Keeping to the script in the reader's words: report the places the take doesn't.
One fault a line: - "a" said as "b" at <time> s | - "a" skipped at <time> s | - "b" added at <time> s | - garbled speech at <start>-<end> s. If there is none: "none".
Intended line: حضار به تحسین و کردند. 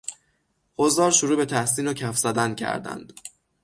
- "شروع" added at 1.1 s
- "کف زدن" added at 1.9 s